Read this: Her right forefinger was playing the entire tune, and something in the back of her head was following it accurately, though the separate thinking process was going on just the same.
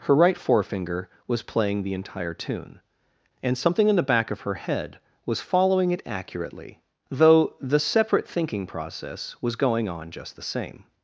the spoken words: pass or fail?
pass